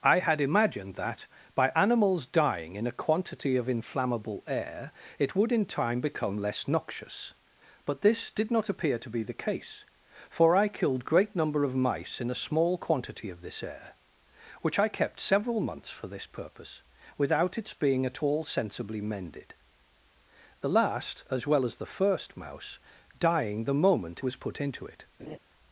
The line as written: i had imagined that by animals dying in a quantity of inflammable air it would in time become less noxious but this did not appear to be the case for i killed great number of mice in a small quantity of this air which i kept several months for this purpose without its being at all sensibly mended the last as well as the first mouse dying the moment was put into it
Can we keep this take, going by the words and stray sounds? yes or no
no